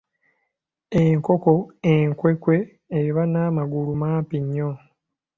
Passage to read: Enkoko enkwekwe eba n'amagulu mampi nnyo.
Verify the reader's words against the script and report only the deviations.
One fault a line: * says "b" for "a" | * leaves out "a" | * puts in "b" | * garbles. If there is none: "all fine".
all fine